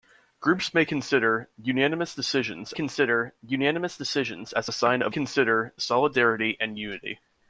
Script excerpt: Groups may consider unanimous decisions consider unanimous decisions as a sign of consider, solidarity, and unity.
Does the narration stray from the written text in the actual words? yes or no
no